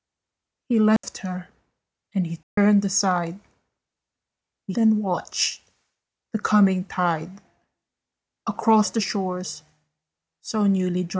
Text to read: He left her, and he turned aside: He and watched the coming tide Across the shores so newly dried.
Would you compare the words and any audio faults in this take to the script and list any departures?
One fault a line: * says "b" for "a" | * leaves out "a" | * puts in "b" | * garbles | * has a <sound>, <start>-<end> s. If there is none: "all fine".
* has a dropout, 1.0-1.0 s
* has a dropout, 2.4-2.6 s